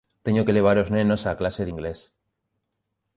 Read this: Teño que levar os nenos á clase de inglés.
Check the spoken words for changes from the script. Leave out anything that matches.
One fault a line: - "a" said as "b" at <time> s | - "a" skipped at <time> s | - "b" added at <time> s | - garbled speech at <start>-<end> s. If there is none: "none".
none